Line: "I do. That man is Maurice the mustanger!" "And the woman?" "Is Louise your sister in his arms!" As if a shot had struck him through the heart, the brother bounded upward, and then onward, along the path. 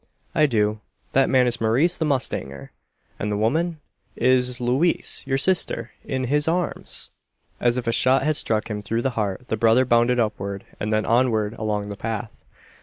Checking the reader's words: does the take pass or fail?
pass